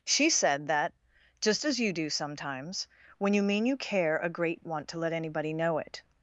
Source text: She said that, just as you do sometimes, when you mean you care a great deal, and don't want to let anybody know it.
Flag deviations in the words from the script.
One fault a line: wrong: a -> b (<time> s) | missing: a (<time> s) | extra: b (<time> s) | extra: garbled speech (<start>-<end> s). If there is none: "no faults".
missing: deal and don't (4.7 s)